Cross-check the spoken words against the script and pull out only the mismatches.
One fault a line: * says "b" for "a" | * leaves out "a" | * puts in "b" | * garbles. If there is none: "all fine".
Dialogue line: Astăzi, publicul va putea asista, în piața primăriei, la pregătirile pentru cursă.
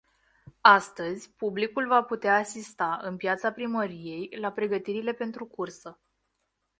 all fine